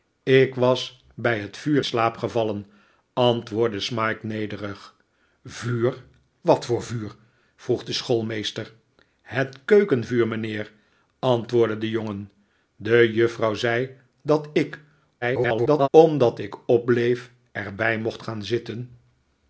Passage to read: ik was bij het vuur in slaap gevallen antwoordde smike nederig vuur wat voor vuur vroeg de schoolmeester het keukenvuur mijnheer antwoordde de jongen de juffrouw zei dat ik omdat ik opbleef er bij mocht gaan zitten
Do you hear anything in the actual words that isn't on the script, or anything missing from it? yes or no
yes